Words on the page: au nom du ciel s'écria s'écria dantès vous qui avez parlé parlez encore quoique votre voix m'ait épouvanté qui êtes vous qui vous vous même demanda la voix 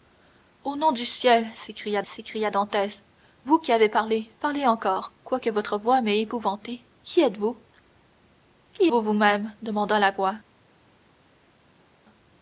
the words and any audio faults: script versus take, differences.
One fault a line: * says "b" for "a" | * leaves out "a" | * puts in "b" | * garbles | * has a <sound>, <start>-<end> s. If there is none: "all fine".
all fine